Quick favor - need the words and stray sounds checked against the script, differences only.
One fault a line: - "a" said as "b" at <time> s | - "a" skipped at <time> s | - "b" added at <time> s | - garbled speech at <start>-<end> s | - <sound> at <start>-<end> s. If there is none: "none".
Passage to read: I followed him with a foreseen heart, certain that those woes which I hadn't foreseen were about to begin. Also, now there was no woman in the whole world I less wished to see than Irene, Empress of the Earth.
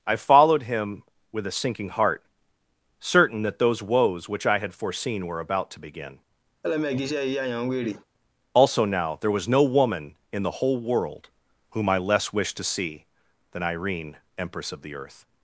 - "foreseen" said as "sinking" at 1.5 s
- "hadn't" said as "had" at 4.6 s
- laugh at 6.6-8.0 s
- "whom" added at 11.7 s